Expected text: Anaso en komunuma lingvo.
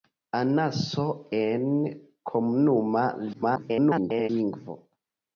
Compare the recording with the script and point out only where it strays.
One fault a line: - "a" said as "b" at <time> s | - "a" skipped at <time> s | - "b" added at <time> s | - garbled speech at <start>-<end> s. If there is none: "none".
- garbled speech at 3.3-4.3 s